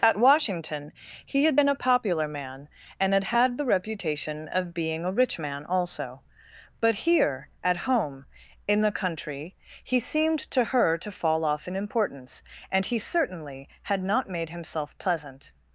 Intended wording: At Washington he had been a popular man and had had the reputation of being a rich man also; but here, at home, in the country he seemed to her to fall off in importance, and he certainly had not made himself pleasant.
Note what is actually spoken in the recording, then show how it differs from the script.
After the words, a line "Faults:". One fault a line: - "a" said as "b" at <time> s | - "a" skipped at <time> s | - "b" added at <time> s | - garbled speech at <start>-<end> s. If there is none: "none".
At Washington he had been a popular man and had had the reputation of being a rich man also; but here, at home, in the country he seemed to her to fall off in importance, and he certainly had not made himself pleasant.
Faults:
none